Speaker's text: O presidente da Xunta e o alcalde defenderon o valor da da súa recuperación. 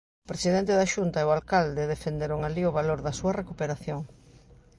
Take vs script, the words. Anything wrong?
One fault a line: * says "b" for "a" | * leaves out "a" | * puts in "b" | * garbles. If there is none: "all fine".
* puts in "alí"
* leaves out "da"